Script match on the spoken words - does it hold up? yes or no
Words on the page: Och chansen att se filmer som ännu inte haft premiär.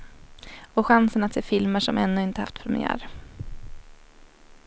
yes